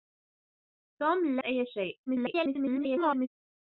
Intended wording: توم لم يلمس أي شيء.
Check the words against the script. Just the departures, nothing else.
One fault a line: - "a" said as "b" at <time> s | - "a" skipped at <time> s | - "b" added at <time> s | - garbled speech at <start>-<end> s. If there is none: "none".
- "لم يلمس" skipped at 1.4 s
- garbled speech at 2.1-3.3 s